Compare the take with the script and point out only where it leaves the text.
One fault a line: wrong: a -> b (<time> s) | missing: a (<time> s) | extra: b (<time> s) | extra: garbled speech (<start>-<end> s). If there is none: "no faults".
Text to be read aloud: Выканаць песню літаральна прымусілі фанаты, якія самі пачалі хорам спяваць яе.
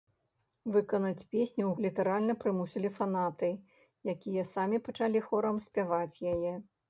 no faults